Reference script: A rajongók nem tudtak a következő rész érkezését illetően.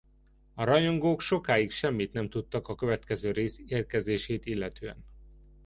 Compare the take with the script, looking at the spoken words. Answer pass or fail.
fail